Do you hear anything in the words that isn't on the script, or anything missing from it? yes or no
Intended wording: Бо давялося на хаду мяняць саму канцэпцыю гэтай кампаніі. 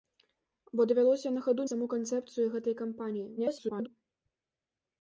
yes